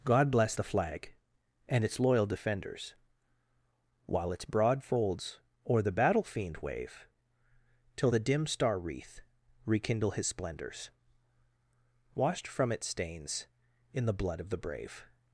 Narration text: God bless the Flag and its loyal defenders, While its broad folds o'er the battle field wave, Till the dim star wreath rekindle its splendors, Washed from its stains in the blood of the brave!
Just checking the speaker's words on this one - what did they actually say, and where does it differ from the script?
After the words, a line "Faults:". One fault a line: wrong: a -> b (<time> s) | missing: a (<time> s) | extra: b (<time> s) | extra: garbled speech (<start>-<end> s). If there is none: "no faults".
God bless the Flag and its loyal defenders, While its broad folds o'er the battle fiend wave, Till the dim star wreath rekindle his splendors, Washed from its stains in the blood of the brave!
Faults:
wrong: field -> fiend (6.2 s)
wrong: its -> his (10.1 s)